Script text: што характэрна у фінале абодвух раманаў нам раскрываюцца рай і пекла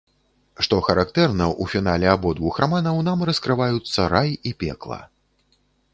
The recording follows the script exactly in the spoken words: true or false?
true